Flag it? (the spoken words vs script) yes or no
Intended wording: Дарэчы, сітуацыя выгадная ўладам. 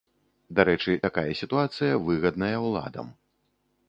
yes